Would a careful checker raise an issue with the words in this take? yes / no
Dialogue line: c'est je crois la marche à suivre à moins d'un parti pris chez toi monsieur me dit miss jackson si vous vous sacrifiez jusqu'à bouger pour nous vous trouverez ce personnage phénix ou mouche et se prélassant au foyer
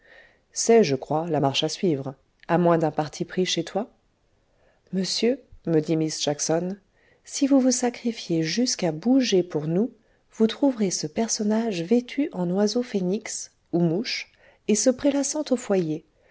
yes